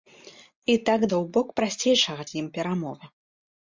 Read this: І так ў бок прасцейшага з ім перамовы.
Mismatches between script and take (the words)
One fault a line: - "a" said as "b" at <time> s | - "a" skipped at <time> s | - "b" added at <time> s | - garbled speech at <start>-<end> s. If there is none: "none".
none